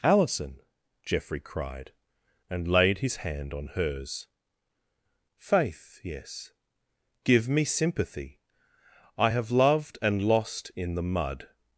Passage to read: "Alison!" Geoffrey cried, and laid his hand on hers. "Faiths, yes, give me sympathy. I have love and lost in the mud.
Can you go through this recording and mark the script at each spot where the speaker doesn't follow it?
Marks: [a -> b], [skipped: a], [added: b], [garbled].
"Alison!" Geoffrey cried, and laid his hand on hers. ["Faiths, -> Faith] yes, give me sympathy. I have [love -> loved] and lost in the mud.